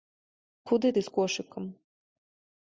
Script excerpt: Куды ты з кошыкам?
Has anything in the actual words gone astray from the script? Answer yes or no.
no